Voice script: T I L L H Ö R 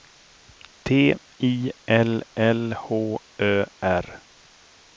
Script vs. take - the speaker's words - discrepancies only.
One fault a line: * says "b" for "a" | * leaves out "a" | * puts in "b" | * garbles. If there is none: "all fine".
all fine